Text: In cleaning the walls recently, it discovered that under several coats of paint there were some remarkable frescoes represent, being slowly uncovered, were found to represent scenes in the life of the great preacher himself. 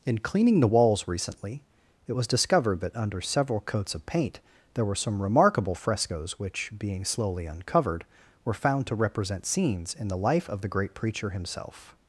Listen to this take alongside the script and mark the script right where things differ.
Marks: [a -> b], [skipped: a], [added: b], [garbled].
In cleaning the walls recently, it [added: was] discovered that under several coats of paint there were some remarkable frescoes [represent, -> which] being slowly uncovered, were found to represent scenes in the life of the great preacher himself.